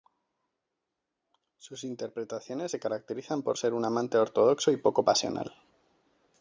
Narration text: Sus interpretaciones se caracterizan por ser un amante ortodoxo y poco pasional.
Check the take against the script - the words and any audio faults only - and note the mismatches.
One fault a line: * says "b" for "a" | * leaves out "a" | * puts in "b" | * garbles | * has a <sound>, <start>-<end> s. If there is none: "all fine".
all fine